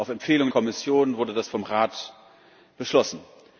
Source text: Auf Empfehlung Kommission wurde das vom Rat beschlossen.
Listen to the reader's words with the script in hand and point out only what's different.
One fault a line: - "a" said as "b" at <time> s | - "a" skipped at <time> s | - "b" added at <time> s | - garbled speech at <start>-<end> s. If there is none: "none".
none